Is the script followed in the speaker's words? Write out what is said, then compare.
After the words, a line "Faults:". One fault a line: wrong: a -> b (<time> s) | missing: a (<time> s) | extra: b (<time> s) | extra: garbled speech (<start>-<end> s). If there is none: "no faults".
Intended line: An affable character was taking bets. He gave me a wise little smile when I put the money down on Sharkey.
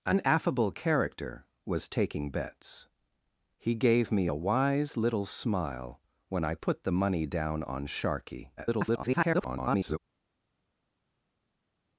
An affable character was taking bets. He gave me a wise little smile when I put the money down on Sharkey. [garbled]
Faults:
extra: garbled speech (8.6-10.0 s)